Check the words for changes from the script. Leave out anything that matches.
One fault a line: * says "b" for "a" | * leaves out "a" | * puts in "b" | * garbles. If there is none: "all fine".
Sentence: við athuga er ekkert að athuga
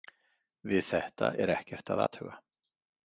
* says "þetta" for "athuga"